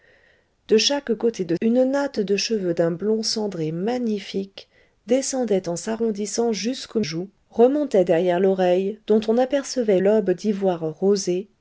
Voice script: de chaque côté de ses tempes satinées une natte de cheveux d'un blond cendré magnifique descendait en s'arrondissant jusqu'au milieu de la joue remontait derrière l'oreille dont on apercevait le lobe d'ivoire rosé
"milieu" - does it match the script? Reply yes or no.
no